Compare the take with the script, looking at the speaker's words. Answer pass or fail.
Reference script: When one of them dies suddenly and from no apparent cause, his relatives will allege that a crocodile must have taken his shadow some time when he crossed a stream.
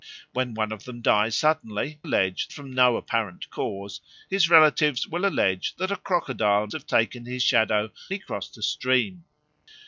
fail